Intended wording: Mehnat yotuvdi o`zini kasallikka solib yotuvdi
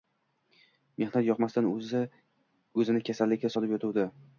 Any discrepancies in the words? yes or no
yes